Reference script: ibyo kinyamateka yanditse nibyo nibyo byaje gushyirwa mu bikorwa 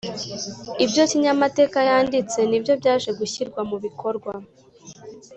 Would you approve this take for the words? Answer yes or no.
no